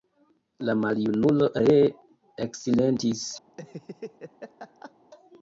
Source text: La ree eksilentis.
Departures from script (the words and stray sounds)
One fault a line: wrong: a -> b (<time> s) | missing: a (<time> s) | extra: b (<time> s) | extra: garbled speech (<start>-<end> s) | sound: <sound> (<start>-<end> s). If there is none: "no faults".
extra: maljunulo (0.8 s)
sound: laugh (3.5-4.9 s)